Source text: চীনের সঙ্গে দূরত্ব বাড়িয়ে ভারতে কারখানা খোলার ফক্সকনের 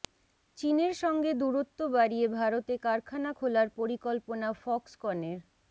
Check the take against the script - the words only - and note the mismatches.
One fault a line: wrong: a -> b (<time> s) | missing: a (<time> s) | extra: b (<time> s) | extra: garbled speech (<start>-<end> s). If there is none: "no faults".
extra: পরিকল্পনা (3.8 s)